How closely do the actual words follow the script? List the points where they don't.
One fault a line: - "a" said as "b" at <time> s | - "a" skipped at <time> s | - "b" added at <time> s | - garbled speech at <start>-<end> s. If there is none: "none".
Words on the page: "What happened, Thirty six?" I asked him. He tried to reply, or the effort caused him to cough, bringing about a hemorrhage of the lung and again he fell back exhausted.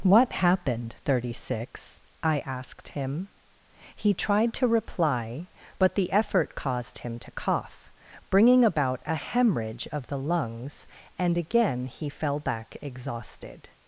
- "or" said as "but" at 5.8 s
- "lung" said as "lungs" at 10.2 s